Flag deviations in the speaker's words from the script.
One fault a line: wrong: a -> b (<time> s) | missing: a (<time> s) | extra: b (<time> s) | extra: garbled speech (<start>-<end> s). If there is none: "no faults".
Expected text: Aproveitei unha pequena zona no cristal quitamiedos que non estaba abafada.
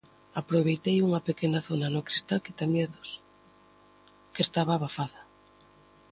missing: non (4.4 s)